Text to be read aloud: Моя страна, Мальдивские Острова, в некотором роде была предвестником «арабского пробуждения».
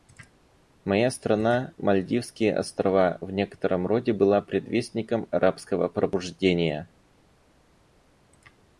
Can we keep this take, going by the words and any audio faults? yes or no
yes